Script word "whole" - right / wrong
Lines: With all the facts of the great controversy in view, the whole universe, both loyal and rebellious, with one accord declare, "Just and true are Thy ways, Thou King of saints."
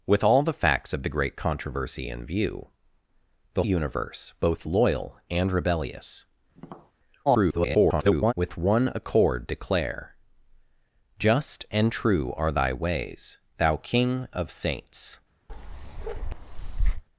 wrong